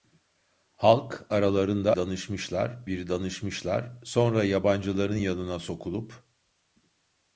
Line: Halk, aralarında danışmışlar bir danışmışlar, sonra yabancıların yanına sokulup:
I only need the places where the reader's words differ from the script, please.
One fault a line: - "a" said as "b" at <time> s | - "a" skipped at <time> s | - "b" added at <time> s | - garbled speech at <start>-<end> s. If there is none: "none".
none